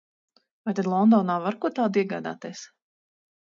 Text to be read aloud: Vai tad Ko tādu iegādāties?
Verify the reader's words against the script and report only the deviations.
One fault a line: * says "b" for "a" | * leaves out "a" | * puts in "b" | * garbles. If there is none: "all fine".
* puts in "Londonā var"